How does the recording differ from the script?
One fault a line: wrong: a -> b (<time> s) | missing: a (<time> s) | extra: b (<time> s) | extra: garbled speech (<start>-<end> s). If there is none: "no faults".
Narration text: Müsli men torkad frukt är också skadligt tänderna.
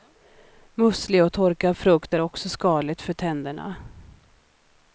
wrong: men -> och (1.2 s)
extra: för (3.0 s)